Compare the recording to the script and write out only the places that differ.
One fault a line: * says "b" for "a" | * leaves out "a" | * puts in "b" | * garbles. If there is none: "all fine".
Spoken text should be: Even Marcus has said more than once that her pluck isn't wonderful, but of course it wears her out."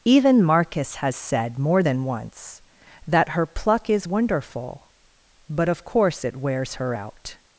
* says "is" for "isn't"